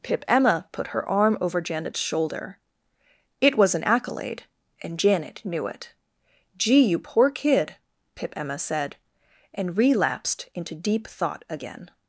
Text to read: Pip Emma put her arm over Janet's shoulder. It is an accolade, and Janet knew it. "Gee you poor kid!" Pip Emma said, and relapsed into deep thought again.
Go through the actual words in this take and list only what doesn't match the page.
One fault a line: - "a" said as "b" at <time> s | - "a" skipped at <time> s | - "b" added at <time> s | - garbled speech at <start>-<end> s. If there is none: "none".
- "is" said as "was" at 3.6 s